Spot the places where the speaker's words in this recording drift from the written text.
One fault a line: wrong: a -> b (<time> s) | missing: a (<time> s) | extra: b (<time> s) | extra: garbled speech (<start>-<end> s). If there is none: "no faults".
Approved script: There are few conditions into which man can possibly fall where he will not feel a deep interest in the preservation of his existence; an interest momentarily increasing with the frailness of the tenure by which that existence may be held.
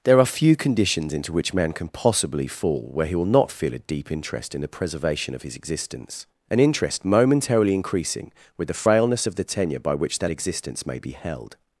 no faults